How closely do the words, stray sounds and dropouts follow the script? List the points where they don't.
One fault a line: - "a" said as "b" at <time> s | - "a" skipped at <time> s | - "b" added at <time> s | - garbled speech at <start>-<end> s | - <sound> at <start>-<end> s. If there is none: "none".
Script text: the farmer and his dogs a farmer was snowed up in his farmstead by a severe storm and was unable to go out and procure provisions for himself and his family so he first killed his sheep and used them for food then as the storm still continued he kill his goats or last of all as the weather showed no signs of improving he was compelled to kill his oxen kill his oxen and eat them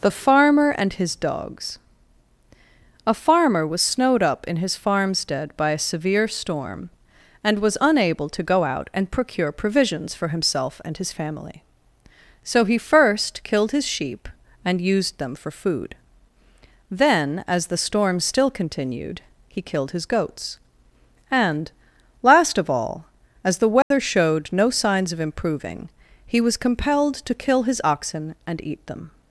- "kill" said as "killed" at 19.6 s
- "or" said as "and" at 21.3 s
- dropout at 23.8-23.9 s
- "kill his oxen" skipped at 28.3 s